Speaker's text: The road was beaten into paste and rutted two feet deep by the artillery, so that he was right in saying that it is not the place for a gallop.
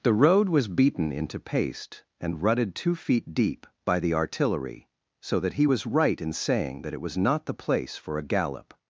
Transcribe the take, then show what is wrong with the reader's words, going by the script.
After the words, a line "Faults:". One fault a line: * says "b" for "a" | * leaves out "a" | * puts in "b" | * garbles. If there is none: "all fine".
The road was beaten into paste and rutted two feet deep by the artillery, so that he was right in saying that it was not the place for a gallop.
Faults:
* says "was" for "is"